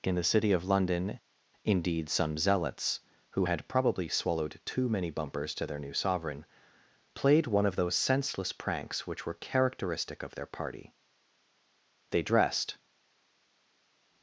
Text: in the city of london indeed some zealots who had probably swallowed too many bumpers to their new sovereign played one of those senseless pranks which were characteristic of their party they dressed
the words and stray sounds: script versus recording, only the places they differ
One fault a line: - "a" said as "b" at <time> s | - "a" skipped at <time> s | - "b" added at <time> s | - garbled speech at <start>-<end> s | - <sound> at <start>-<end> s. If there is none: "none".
none